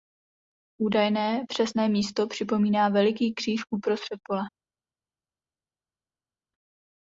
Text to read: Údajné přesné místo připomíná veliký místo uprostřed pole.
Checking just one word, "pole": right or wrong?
right